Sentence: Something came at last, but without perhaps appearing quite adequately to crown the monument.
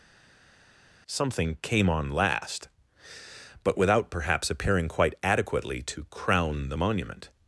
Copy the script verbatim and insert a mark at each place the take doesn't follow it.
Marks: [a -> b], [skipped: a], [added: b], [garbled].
Something came [at -> on] last, but without perhaps appearing quite adequately to crown the monument.